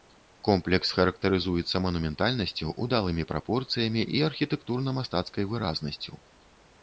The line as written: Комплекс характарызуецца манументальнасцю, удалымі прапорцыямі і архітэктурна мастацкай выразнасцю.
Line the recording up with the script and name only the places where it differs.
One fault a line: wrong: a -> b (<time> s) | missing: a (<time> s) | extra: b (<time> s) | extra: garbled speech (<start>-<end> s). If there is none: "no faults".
no faults